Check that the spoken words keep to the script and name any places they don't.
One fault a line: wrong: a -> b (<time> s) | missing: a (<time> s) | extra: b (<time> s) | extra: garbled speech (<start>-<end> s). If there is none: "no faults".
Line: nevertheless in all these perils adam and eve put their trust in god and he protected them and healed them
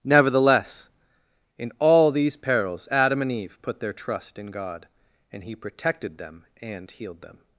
no faults